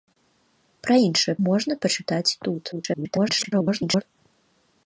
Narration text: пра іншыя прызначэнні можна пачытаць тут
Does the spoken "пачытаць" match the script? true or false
true